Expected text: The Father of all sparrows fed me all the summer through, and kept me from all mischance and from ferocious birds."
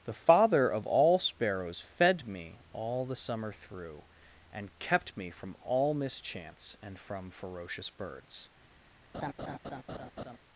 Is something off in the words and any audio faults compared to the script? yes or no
yes